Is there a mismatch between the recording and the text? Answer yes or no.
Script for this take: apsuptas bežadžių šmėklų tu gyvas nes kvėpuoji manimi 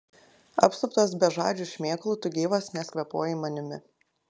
no